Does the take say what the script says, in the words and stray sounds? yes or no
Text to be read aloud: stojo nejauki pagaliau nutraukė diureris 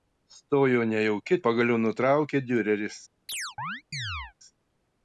no